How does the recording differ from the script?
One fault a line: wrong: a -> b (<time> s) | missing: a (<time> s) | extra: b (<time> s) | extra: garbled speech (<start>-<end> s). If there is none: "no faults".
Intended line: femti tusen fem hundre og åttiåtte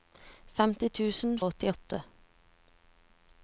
missing: fem hundre (1.4 s)